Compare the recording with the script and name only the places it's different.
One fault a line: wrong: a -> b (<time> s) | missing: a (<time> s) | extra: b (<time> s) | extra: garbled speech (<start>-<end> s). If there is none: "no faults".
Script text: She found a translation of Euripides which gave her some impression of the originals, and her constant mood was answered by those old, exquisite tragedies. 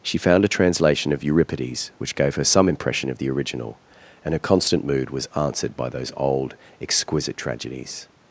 wrong: originals -> original (3.3 s)